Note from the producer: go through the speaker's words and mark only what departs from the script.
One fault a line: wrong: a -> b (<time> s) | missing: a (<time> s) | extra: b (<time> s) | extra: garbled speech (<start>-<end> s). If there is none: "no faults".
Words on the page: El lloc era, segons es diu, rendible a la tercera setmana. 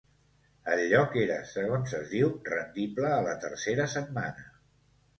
no faults